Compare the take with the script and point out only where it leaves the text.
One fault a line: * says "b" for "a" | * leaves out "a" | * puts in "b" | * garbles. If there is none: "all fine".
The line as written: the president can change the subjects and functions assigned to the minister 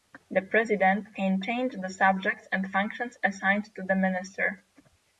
all fine